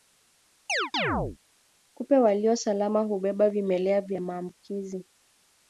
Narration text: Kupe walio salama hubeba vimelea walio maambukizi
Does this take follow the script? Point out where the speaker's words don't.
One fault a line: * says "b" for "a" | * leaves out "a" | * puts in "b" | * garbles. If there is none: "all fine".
* says "vya" for "walio"